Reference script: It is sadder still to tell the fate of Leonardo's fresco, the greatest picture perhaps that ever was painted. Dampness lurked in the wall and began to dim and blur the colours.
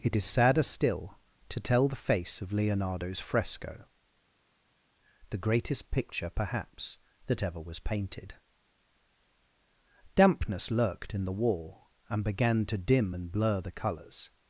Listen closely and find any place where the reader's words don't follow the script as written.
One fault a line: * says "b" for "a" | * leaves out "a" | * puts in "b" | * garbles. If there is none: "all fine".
* says "face" for "fate"